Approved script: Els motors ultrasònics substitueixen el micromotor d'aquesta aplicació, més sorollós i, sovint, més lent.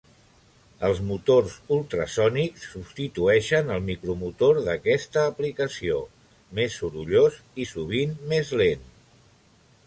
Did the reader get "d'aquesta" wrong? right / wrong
right